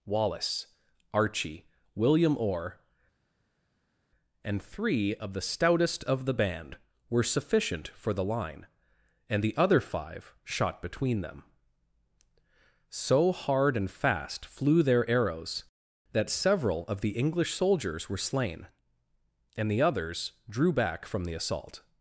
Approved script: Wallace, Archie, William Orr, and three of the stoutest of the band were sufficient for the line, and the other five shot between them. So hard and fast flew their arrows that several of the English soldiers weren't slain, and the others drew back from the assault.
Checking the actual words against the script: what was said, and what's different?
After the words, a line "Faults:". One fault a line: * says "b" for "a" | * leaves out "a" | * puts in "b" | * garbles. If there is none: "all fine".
Wallace, Archie, William Orr, and three of the stoutest of the band were sufficient for the line, and the other five shot between them. So hard and fast flew their arrows that several of the English soldiers were slain, and the others drew back from the assault.
Faults:
* says "were" for "weren't"